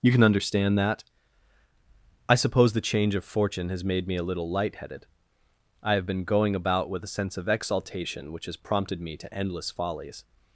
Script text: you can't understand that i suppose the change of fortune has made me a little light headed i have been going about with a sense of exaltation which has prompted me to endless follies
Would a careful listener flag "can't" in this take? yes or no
yes